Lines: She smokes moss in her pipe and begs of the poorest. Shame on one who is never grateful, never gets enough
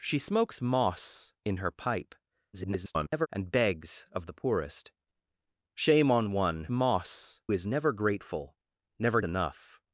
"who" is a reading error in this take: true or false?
true